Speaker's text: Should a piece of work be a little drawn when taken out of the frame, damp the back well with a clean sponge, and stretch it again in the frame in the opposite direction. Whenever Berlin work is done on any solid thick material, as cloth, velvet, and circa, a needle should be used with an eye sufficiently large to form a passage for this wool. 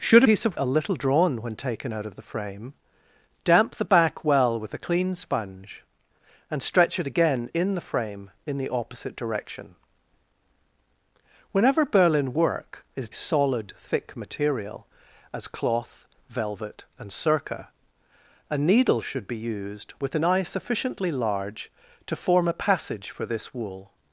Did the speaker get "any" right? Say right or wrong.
wrong